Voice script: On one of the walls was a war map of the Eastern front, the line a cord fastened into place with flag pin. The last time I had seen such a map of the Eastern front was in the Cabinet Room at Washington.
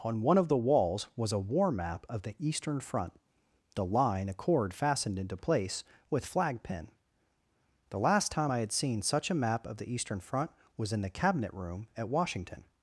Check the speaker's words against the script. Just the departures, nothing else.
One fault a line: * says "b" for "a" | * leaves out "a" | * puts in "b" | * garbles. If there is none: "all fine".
all fine